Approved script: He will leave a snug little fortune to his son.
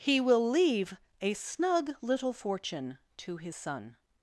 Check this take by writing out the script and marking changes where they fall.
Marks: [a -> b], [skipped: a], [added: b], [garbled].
He will leave a snug little fortune to his son.